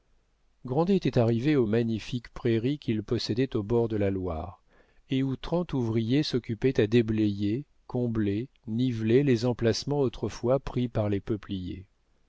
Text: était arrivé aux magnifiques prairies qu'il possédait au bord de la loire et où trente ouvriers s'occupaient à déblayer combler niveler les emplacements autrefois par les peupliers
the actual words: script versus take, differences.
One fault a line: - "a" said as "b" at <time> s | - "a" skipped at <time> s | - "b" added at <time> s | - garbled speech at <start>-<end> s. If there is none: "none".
- "pris" added at 10.6 s